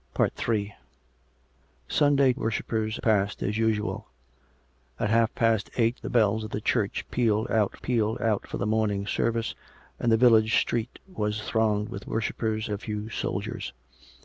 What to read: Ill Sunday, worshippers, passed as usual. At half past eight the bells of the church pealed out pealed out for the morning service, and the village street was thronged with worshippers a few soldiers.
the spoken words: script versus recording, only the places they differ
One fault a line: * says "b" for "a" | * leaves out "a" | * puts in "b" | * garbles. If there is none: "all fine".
all fine